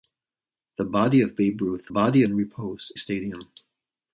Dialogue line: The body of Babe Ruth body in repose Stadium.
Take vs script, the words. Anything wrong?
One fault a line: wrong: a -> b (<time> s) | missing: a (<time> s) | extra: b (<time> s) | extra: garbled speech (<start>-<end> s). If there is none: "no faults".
no faults